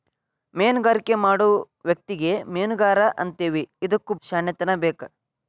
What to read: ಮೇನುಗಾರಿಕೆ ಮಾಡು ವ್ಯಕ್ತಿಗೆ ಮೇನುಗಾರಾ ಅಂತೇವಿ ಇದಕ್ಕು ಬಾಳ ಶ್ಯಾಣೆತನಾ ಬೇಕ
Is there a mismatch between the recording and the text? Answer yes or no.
yes